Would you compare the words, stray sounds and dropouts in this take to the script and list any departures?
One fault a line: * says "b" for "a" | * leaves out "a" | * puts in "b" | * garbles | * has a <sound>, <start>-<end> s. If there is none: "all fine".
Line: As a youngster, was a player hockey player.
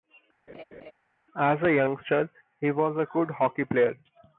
* has a laugh, 0.5-0.9 s
* puts in "he"
* says "good" for "player"